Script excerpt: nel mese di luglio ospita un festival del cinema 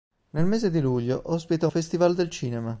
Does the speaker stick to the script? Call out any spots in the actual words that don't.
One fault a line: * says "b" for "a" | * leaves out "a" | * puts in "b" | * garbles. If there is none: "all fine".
* leaves out "un"